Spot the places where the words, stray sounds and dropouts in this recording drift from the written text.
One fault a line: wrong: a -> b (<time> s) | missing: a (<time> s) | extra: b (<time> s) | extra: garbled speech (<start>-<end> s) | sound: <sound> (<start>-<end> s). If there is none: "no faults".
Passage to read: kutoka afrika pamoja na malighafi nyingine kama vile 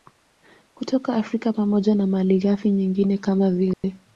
sound: dropout (3.7-3.8 s)